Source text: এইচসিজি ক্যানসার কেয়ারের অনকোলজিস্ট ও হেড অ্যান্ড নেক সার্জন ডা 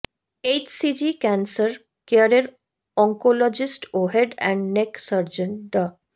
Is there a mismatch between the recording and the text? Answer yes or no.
no